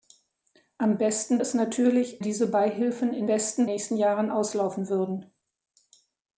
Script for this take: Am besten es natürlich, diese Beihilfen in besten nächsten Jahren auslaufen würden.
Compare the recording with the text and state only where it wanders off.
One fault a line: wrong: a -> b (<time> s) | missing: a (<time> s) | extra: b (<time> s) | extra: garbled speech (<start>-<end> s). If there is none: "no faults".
no faults